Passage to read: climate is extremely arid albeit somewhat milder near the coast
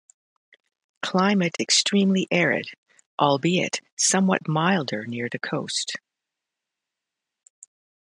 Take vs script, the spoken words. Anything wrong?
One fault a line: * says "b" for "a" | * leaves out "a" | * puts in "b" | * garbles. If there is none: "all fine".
* leaves out "is"